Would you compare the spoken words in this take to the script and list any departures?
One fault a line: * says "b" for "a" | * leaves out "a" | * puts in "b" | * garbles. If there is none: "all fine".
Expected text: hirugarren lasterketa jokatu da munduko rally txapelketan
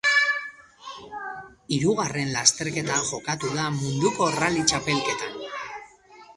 all fine